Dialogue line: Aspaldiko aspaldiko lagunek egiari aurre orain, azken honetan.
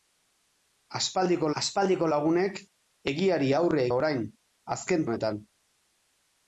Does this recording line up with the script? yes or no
yes